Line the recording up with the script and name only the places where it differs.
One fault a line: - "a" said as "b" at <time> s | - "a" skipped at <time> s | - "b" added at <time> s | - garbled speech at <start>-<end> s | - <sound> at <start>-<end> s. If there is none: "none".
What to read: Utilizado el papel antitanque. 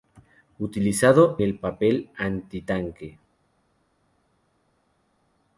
none